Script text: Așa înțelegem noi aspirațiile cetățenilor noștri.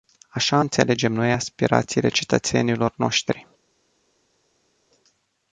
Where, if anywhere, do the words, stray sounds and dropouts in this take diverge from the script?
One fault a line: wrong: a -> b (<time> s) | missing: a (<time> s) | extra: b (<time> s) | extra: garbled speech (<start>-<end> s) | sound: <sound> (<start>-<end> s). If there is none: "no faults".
no faults